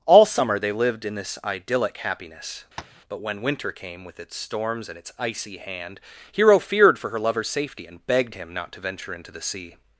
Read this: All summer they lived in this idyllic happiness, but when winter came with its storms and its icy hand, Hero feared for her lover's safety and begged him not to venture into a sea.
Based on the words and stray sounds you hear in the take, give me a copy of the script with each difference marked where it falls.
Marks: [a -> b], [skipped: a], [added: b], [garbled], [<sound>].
All summer they lived in this idyllic happiness, [tap] but when winter came with its storms and its icy hand, Hero feared for her lover's safety and begged him not to venture into [a -> the] sea.